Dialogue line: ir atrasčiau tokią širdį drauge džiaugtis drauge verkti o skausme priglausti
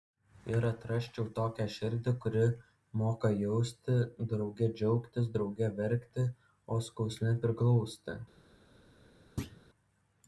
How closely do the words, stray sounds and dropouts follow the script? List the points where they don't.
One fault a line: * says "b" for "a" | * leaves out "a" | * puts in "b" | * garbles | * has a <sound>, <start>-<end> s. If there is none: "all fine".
* puts in "kuri moka jausti"
* has a thud, 9.4-9.6 s